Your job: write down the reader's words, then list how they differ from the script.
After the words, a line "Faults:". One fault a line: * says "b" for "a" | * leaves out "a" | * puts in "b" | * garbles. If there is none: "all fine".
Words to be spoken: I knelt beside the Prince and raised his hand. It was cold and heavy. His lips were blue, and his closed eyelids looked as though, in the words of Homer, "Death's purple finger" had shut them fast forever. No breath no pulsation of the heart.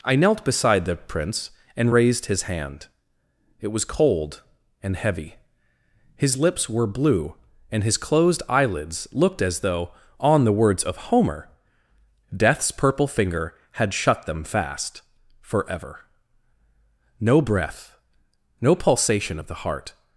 I knelt beside the Prince and raised his hand. It was cold and heavy. His lips were blue, and his closed eyelids looked as though, on the words of Homer, "Death's purple finger" had shut them fast forever. No breath no pulsation of the heart.
Faults:
* says "on" for "in"